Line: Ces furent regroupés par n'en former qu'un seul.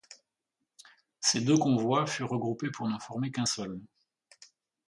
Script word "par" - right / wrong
wrong